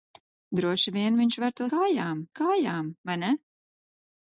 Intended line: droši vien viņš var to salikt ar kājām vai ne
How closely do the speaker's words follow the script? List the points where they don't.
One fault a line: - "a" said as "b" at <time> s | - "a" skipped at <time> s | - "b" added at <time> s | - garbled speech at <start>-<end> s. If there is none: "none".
- "salikt" said as "kājām" at 1.7 s